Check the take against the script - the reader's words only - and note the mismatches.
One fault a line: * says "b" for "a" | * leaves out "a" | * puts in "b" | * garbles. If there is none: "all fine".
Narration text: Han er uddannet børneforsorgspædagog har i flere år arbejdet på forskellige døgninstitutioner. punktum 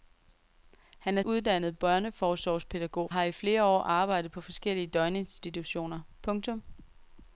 all fine